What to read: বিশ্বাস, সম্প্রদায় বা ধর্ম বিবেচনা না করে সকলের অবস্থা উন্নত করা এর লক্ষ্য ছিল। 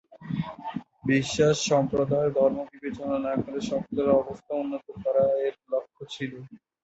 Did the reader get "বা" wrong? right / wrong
wrong